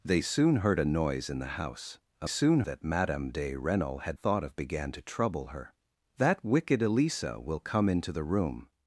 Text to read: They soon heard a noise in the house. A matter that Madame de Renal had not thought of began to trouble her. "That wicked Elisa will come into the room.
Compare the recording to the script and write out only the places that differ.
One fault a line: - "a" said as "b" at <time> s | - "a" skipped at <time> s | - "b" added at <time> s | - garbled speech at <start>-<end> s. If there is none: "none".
- "matter" said as "soon" at 2.3 s
- "not" skipped at 4.2 s